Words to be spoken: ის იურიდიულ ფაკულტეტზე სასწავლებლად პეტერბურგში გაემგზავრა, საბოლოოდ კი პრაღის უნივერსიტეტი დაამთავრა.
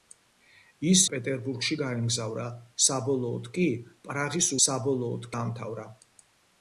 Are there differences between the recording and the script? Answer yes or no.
yes